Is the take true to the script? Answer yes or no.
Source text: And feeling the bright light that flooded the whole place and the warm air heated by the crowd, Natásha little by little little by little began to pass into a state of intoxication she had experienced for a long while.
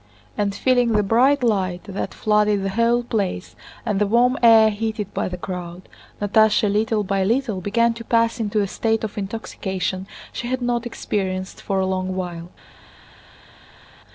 no